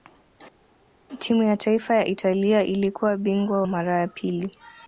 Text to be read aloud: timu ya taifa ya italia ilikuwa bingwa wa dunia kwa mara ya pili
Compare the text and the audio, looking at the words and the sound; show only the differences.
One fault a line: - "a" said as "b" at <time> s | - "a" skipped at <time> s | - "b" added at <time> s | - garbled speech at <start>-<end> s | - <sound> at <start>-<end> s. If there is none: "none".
- "wa dunia kwa" skipped at 3.6 s